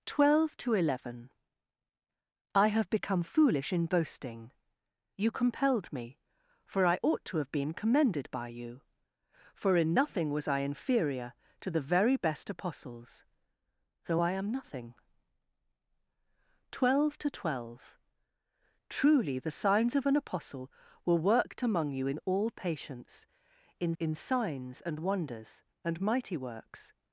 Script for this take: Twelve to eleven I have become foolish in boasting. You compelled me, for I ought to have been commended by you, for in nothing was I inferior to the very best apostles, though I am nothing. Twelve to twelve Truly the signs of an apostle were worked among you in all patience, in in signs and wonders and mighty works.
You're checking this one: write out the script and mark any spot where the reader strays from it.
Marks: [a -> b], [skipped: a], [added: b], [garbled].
Twelve to eleven I have become foolish in boasting. You compelled me, for I ought to have been commended by you, for in nothing was I inferior to the very best apostles, though I am nothing. Twelve to twelve Truly the signs of an apostle were worked among you in all patience, in in signs and wonders and mighty works.